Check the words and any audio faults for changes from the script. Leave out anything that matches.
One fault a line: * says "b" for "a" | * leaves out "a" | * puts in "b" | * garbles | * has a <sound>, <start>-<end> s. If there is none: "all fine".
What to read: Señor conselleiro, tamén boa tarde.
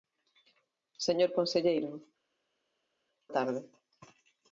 * leaves out "tamén boa"